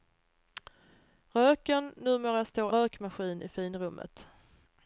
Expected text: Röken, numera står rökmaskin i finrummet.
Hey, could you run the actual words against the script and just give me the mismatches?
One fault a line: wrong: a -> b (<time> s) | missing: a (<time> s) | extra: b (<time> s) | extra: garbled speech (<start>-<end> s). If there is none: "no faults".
no faults